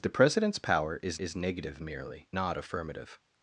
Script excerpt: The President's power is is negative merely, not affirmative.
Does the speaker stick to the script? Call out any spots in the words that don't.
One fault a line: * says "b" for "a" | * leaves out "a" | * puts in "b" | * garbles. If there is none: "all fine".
all fine